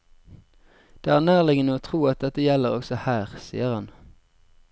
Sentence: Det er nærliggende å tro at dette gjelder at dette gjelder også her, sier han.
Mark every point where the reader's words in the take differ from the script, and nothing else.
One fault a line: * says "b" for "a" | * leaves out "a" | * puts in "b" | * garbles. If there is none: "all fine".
* leaves out "at dette gjelder"